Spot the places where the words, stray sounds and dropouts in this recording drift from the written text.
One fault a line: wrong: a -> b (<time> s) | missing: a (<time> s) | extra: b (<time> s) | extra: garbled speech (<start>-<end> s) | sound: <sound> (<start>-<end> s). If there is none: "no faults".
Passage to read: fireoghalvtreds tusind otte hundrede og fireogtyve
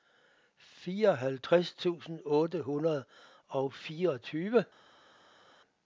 no faults